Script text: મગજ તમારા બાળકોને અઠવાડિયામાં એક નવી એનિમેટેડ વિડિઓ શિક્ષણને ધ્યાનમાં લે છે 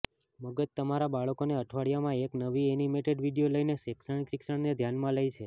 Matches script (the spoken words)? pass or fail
fail